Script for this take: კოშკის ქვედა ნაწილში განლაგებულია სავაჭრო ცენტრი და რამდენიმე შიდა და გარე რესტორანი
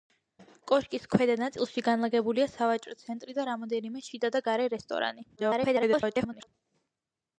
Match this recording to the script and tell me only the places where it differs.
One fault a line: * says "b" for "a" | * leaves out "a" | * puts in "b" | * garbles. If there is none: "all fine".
* garbles